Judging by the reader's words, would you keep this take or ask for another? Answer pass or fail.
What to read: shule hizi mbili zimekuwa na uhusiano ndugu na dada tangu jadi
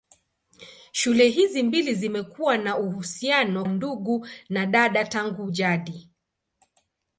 pass